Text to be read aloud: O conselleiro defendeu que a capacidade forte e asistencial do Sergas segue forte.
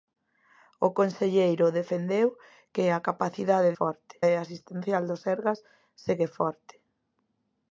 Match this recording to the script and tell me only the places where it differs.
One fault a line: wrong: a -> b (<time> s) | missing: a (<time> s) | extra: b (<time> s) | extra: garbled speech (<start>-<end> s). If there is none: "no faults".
no faults